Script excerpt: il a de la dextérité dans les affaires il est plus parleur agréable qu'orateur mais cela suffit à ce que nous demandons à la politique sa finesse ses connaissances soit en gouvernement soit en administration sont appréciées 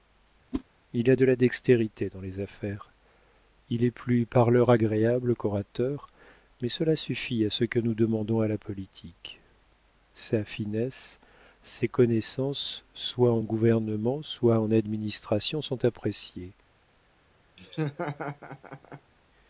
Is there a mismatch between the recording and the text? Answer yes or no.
no